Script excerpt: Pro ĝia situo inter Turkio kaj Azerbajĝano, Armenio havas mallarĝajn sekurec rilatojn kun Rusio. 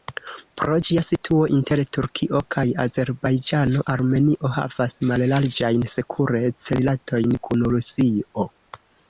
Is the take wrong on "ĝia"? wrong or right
right